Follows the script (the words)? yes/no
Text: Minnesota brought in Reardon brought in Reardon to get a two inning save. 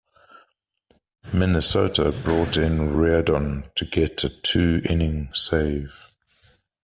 no